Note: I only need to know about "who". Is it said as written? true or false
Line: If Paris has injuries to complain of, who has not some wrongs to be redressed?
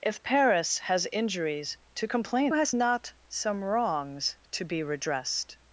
false